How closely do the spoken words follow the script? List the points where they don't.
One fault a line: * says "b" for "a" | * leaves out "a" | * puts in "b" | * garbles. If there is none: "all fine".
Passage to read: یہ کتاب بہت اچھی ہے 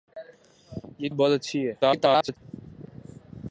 * leaves out "کتاب"
* garbles